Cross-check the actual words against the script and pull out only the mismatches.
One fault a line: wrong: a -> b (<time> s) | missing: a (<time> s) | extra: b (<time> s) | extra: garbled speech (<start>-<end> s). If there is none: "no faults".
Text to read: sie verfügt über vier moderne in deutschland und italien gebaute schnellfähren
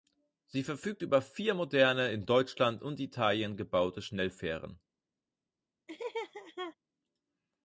no faults